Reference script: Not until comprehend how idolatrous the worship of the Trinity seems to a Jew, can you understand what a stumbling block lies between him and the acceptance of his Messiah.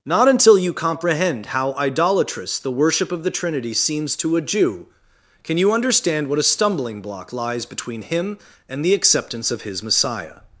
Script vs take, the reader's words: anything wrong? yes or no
yes